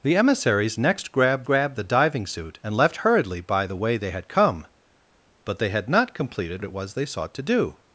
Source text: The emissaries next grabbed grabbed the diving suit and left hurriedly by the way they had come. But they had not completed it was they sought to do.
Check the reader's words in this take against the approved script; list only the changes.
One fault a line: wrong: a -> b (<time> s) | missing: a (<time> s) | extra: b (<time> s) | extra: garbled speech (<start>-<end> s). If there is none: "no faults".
no faults